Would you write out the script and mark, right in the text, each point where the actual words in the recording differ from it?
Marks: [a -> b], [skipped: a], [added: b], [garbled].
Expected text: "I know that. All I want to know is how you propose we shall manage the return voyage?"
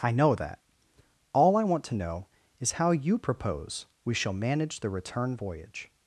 "I know that. All I want to know is how you propose we shall manage the return voyage?"